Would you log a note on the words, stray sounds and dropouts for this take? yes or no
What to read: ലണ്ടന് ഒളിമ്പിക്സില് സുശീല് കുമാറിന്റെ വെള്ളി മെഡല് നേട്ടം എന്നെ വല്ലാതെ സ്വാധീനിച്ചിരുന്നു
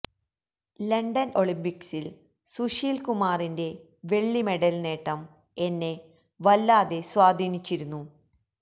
no